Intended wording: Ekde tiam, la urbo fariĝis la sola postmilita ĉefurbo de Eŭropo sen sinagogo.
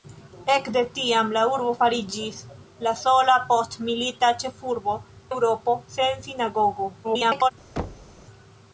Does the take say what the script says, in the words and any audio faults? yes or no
no